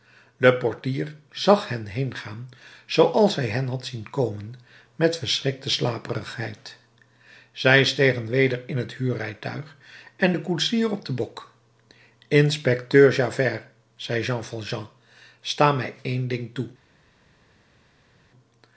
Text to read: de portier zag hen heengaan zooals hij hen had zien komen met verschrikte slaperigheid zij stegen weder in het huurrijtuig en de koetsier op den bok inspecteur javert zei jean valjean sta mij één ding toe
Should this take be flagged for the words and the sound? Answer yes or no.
no